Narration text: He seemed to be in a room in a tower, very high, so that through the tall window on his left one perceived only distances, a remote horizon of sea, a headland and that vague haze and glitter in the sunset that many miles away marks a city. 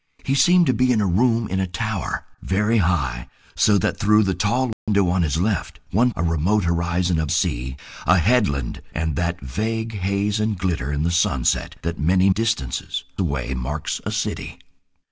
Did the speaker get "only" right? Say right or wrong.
wrong